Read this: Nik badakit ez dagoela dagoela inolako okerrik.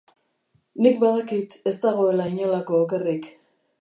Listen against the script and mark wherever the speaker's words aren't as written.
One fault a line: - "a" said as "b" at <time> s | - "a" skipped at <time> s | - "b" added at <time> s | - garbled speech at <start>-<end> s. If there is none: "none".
- "dagoela" skipped at 2.2 s